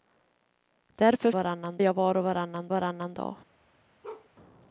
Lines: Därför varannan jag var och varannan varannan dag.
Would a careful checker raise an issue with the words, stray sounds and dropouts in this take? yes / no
yes